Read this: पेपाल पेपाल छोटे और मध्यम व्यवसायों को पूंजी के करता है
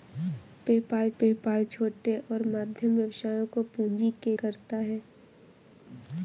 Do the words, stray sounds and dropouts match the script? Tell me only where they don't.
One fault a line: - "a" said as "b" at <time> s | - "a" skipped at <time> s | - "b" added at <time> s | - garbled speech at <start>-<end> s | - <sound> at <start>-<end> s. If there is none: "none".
none